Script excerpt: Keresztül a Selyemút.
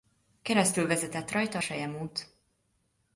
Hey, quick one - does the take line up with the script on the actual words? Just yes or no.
no